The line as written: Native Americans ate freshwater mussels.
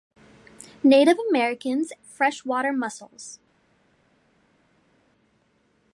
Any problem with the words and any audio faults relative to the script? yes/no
yes